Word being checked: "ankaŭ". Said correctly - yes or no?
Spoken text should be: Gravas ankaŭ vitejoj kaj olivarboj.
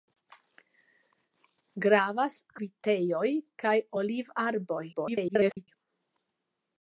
no